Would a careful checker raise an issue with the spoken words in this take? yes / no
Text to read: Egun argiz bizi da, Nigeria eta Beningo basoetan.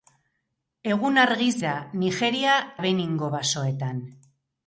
yes